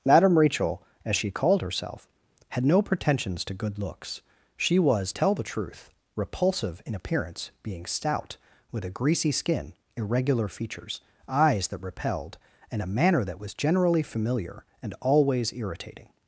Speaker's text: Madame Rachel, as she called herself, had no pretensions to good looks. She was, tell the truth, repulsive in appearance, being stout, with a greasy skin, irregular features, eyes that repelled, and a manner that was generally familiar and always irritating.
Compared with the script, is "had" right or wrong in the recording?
right